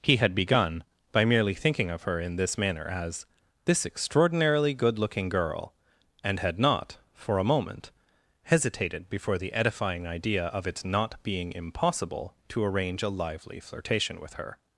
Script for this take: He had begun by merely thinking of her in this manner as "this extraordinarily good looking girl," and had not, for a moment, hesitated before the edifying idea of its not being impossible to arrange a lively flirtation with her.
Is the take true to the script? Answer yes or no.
yes